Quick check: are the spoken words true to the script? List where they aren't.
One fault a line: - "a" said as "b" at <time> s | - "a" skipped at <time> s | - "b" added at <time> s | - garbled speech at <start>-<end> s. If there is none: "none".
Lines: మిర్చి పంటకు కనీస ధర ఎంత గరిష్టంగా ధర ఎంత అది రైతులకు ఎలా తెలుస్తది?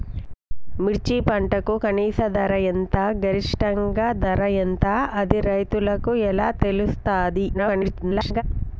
- garbled speech at 7.5-8.4 s